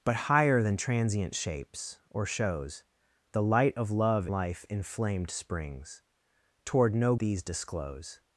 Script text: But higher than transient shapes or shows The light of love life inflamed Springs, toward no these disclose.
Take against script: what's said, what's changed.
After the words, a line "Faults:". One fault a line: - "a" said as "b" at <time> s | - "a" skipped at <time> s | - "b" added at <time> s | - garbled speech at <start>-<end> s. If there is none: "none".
But higher than transient shapes or shows The light of love life inflamed Springs, toward no these disclose.
Faults:
none